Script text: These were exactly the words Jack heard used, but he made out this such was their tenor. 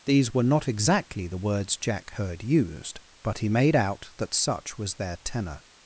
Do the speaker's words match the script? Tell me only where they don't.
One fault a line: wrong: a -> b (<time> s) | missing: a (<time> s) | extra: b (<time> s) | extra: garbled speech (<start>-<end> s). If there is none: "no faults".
extra: not (0.4 s)
wrong: this -> that (4.2 s)